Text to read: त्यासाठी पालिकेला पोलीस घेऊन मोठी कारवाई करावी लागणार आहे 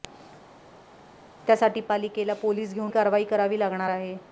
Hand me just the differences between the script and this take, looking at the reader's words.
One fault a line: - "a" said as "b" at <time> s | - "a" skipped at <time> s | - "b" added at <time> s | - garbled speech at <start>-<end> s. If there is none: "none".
- "मोठी" skipped at 2.9 s